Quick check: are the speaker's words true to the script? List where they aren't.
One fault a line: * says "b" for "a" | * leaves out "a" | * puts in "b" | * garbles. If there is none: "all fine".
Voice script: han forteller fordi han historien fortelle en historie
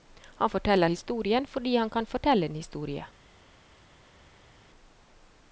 * puts in "historien"
* says "kan" for "historien"